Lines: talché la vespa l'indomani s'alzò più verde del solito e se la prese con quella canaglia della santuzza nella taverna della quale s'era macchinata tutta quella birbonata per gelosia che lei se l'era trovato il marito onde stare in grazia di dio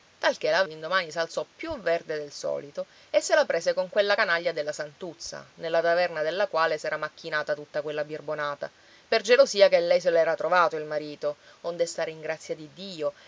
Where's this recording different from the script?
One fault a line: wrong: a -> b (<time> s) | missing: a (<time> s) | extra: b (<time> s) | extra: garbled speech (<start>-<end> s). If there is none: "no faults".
missing: vespa (0.6 s)